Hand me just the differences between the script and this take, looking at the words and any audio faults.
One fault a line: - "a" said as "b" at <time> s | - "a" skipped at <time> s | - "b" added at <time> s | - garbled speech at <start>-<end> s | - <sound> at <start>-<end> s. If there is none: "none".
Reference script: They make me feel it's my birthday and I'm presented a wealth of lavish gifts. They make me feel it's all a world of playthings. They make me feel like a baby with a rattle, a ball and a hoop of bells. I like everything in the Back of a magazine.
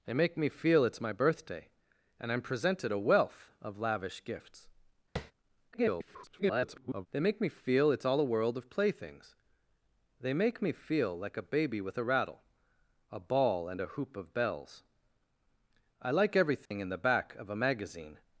- tap at 5.2-5.3 s
- garbled speech at 5.7-7.1 s
- dropout at 16.7-16.7 s